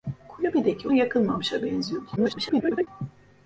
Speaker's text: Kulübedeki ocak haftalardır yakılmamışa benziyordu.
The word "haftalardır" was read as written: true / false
false